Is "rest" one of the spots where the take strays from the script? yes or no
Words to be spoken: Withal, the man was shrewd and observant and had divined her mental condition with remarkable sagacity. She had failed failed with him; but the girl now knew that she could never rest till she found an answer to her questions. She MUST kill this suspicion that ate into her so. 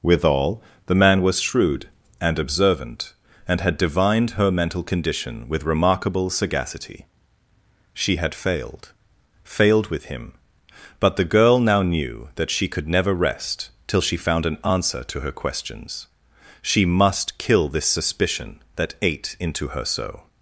no